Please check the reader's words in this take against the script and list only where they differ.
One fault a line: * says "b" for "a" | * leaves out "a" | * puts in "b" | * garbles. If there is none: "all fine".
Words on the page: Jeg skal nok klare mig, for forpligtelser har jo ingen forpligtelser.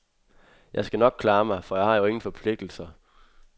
* says "jeg" for "forpligtelser"